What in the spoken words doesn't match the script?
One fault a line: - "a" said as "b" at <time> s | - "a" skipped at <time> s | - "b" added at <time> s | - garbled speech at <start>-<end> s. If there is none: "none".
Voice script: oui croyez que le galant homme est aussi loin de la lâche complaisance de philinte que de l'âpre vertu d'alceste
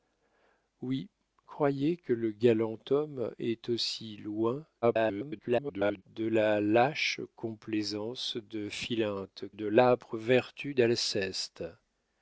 - garbled speech at 4.8-6.0 s
- "que" skipped at 9.4 s